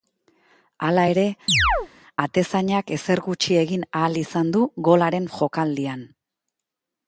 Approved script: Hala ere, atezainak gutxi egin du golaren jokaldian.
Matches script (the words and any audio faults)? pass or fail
fail